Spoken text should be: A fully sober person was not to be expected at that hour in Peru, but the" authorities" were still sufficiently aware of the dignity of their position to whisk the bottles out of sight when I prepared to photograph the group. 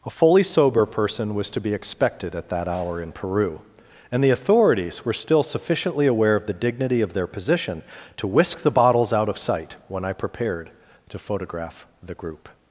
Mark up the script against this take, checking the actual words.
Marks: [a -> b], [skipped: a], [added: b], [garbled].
A fully sober person was [skipped: not] to be expected at that hour in Peru, [but -> and] the" authorities" were still sufficiently aware of the dignity of their position to whisk the bottles out of sight when I prepared to photograph the group.